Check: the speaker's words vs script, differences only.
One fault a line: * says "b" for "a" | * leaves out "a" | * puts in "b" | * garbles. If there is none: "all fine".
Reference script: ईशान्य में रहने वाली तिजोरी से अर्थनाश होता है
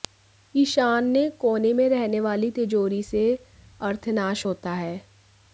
* puts in "कोने"